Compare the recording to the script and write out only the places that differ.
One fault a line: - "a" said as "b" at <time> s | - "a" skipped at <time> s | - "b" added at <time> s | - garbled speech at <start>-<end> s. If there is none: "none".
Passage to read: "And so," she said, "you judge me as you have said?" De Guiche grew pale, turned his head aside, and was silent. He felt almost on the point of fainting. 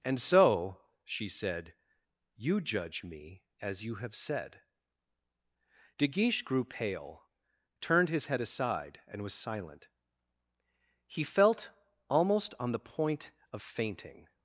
none